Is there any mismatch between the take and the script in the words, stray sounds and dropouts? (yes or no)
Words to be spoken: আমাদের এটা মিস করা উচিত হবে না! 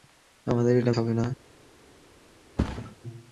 yes